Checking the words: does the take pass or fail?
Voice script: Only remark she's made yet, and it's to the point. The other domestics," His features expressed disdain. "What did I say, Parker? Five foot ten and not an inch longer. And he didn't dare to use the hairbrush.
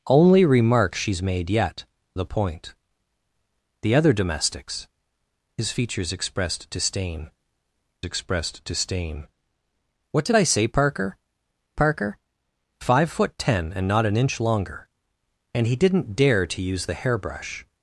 fail